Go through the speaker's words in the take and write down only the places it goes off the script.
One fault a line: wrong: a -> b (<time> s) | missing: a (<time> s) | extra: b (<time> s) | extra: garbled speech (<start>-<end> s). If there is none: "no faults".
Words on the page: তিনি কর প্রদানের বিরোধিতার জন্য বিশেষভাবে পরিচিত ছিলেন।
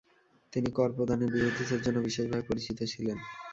no faults